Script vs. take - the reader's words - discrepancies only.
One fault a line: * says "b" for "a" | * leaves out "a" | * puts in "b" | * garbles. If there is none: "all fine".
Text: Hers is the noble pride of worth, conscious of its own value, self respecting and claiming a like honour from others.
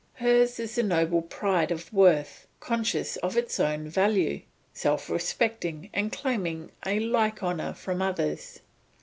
all fine